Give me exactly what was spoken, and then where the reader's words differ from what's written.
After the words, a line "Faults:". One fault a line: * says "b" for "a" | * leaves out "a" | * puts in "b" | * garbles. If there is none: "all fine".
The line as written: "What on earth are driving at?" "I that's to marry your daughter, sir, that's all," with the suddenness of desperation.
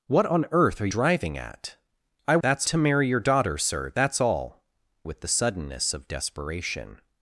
"What on earth are driving at?" "I that's to marry your daughter, sir, that's all," with the suddenness of desperation.
Faults:
all fine